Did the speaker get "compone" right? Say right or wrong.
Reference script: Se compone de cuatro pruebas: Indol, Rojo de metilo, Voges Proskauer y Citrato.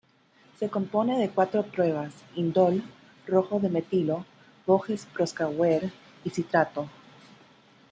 right